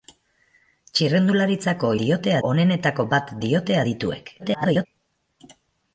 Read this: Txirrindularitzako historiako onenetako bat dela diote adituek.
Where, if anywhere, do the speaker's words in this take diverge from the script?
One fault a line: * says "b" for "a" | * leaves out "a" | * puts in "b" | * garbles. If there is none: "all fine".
* says "diote" for "historiako"
* leaves out "dela"
* garbles